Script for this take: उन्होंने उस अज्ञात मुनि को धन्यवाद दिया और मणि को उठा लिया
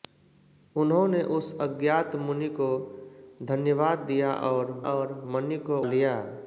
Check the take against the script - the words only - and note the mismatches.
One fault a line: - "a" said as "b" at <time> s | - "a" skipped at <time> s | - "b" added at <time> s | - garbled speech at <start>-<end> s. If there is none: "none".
- "और" added at 4.9 s
- "उठा" skipped at 5.8 s